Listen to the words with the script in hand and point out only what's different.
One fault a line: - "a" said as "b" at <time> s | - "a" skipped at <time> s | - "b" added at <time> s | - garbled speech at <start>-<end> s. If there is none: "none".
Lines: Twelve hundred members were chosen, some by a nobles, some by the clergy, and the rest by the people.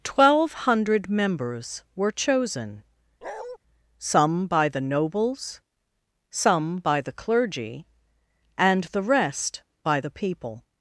- "a" said as "the" at 4.7 s